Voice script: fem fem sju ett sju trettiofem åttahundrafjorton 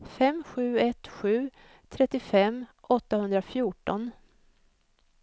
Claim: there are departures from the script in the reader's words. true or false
true